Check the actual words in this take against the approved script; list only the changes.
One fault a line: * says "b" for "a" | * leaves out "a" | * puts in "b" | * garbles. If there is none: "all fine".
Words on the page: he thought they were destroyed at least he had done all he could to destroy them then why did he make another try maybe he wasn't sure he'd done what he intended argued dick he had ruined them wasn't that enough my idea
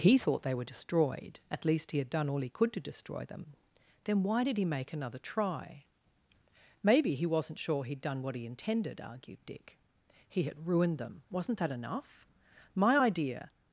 all fine